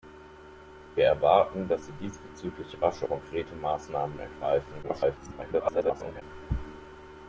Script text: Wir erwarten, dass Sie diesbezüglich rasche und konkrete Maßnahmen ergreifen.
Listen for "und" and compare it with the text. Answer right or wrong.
wrong